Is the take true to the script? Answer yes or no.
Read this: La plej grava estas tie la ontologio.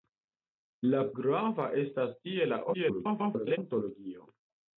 no